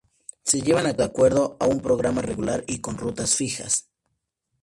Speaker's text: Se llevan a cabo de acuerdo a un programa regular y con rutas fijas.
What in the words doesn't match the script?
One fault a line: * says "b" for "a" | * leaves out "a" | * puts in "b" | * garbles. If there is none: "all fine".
* leaves out "cabo"